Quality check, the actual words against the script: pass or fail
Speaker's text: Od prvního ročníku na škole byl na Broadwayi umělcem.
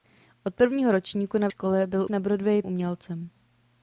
pass